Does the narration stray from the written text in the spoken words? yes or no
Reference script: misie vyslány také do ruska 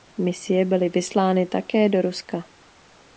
yes